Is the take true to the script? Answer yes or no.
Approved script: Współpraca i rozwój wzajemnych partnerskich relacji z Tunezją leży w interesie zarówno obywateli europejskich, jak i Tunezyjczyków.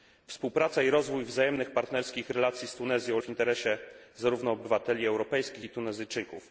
no